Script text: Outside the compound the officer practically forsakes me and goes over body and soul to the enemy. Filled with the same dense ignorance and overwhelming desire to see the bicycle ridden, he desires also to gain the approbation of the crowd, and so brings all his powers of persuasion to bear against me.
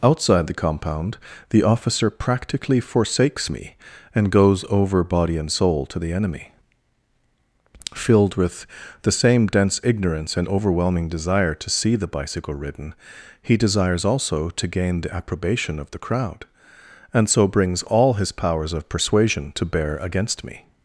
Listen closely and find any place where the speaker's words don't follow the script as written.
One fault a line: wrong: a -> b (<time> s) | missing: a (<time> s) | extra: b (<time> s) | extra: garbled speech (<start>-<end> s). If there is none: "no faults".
no faults